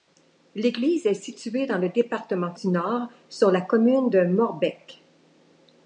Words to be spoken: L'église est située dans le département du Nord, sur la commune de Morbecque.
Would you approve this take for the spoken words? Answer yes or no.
yes